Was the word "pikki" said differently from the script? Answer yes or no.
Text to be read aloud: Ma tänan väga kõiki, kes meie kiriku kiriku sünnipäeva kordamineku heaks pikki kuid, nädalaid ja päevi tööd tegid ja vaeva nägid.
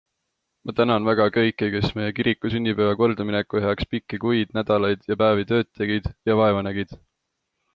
no